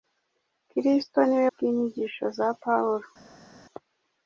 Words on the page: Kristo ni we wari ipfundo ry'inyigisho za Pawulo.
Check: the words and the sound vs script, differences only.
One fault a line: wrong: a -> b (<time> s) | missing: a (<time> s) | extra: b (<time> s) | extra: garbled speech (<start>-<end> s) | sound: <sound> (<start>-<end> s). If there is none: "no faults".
missing: wari ipfundo (1.5 s)